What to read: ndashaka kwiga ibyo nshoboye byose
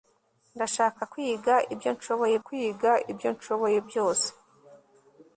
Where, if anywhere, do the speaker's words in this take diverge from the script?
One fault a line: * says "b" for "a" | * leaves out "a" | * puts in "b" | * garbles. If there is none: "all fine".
* puts in "kwiga ibyo nshoboye"